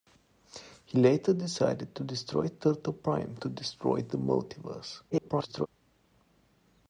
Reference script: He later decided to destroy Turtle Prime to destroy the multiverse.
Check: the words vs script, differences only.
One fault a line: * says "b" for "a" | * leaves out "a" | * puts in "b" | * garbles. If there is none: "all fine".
* garbles